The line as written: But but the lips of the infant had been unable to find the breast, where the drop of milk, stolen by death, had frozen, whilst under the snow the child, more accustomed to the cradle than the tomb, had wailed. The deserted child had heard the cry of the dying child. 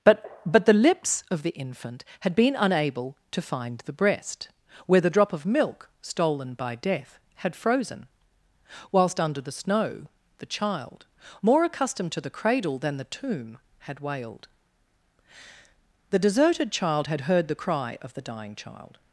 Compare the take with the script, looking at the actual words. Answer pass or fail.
pass